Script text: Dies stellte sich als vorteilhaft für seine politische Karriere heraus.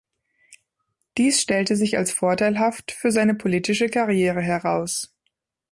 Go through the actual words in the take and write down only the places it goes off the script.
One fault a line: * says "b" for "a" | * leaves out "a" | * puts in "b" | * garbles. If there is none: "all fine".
all fine